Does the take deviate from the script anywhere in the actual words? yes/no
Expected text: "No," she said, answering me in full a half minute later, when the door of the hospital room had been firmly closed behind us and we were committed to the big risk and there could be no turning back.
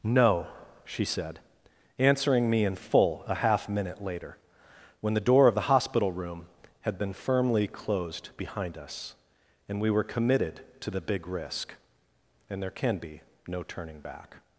yes